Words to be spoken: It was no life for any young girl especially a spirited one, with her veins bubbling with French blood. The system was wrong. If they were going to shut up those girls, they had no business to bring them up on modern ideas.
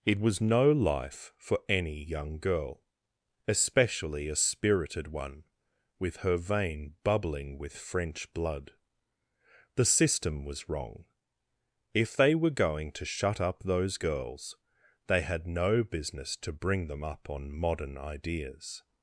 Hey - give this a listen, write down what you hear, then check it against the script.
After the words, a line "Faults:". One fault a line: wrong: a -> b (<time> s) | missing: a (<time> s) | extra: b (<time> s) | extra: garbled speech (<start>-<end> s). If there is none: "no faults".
It was no life for any young girl especially a spirited one, with her vein bubbling with French blood. The system was wrong. If they were going to shut up those girls, they had no business to bring them up on modern ideas.
Faults:
wrong: veins -> vein (6.4 s)